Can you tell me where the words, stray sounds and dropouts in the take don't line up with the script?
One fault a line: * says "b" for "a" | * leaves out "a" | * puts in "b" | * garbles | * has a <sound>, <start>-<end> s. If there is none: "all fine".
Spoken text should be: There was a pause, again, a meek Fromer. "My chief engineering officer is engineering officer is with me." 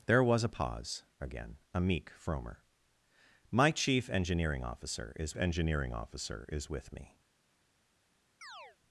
* has a chirp, 8.4-8.8 s